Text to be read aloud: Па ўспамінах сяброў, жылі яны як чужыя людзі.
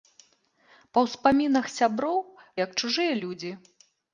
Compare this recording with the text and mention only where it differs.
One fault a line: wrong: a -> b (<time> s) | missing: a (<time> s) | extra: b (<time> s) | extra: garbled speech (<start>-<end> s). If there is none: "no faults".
missing: жылі яны (2.2 s)